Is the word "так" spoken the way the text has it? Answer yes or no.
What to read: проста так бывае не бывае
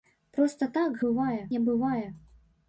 yes